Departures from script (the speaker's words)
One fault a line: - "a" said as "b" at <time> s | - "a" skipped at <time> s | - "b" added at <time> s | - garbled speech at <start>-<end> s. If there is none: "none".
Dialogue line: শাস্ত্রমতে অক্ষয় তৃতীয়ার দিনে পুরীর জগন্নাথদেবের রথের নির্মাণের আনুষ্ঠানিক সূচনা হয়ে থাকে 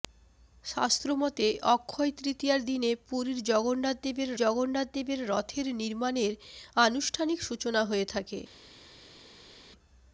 - "জগন্নাথদেবের" added at 4.3 s